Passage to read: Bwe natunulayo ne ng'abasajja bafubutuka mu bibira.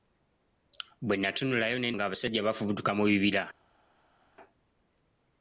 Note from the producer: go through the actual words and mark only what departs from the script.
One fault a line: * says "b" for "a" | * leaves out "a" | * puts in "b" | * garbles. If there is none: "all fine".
all fine